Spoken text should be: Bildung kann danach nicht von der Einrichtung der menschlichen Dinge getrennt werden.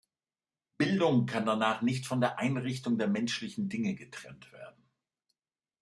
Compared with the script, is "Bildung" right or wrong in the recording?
right